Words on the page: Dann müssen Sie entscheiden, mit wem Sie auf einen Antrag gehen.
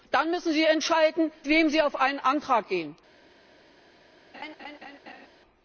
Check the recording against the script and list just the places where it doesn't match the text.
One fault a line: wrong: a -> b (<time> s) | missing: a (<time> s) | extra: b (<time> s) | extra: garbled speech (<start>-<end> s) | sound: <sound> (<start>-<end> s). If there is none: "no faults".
missing: mit (1.3 s)
sound: laugh (4.3-5.3 s)